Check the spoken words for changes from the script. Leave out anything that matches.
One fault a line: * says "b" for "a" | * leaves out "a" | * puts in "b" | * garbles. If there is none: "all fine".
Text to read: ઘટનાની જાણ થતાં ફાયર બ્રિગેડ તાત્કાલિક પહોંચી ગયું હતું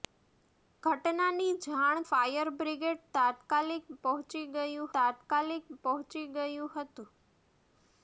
* leaves out "થતાં"
* puts in "તાત્કાલિક પહોંચી ગયું"